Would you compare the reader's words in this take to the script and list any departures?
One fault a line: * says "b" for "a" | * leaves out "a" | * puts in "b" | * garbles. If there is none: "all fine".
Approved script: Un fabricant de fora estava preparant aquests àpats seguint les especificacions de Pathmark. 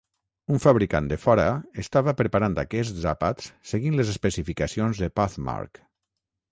all fine